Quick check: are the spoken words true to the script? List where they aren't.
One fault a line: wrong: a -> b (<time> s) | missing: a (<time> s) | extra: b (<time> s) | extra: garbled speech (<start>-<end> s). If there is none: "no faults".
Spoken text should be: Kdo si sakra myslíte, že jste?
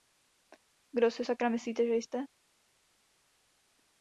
no faults